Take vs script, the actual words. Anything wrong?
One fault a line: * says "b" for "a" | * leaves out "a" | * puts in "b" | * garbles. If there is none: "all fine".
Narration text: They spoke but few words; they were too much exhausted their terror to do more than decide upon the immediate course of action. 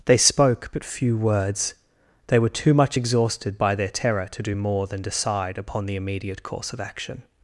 * puts in "by"